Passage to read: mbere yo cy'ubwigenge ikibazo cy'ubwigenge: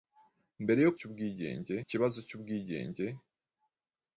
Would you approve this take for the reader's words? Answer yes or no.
yes